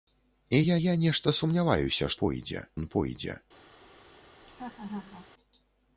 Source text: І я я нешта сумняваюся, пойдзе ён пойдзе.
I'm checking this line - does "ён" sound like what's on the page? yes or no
yes